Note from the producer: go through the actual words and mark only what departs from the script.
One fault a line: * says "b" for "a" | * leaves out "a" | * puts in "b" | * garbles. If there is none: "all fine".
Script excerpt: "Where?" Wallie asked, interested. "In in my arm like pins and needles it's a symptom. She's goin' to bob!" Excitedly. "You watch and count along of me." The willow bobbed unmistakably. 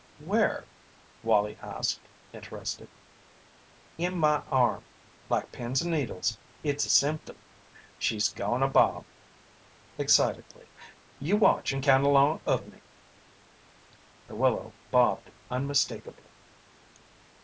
* leaves out "in"